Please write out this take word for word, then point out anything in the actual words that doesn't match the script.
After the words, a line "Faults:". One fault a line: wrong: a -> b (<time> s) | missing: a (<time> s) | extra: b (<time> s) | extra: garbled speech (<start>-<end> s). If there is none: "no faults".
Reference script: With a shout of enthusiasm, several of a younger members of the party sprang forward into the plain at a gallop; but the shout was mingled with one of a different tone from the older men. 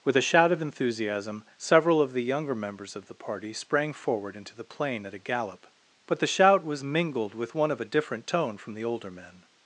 With a shout of enthusiasm, several of the younger members of the party sprang forward into the plain at a gallop; but the shout was mingled with one of a different tone from the older men.
Faults:
wrong: a -> the (2.1 s)